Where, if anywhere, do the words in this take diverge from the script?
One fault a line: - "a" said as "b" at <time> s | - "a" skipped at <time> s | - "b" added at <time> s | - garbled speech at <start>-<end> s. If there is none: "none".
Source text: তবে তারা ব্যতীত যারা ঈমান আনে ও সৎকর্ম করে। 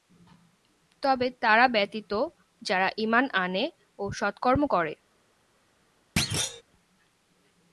none